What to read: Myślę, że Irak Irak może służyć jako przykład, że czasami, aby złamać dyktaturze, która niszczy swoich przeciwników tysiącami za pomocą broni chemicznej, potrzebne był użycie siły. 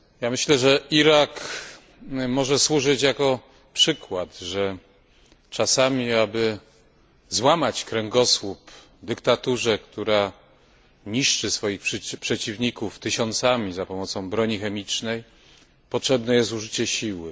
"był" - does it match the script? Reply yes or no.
no